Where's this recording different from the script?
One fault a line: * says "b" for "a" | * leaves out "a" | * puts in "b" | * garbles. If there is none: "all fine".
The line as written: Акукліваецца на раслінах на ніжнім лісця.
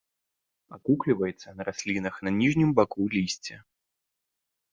* puts in "баку"